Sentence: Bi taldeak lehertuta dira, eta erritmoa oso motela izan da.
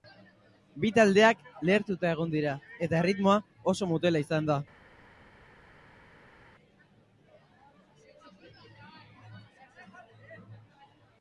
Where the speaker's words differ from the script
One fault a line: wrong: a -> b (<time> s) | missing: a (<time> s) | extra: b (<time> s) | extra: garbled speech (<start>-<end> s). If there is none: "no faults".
extra: egon (2.2 s)